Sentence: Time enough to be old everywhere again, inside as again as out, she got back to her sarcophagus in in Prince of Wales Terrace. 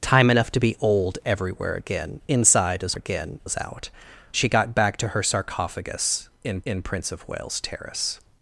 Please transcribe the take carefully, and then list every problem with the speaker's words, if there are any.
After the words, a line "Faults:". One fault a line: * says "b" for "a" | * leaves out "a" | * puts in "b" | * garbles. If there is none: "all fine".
Time enough to be old everywhere again, inside as again as out, she got back to her sarcophagus in in Prince of Wales Terrace.
Faults:
all fine